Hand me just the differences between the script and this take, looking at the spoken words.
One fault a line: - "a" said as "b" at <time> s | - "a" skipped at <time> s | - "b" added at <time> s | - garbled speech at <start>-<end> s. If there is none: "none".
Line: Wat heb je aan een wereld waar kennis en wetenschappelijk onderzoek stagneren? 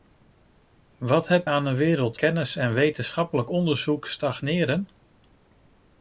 - "je" skipped at 1.5 s
- "waar" skipped at 2.2 s